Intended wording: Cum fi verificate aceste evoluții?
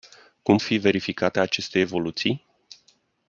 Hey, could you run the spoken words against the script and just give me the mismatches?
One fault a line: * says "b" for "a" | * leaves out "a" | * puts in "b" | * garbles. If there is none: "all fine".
all fine